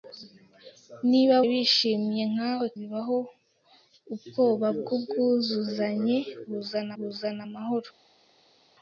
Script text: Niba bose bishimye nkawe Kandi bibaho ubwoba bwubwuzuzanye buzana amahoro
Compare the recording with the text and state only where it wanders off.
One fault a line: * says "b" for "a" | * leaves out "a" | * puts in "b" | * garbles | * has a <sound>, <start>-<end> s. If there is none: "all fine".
* leaves out "bose"
* leaves out "Kandi"
* puts in "buzana"